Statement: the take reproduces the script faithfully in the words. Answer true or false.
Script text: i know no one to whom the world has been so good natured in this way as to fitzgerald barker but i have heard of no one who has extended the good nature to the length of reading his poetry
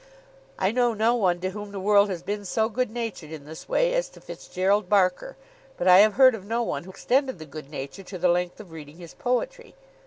false